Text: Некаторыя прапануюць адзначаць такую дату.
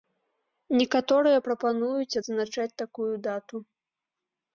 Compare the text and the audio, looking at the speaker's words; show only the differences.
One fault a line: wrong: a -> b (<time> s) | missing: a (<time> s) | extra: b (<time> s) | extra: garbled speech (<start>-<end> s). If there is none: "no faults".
no faults